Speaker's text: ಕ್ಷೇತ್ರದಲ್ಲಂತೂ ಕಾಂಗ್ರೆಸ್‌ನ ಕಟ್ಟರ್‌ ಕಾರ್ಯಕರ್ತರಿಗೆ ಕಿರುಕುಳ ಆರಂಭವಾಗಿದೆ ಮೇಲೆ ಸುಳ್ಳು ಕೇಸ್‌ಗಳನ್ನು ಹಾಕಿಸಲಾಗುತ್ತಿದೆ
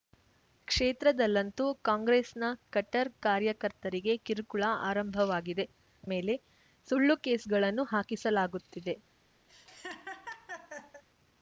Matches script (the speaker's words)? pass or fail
pass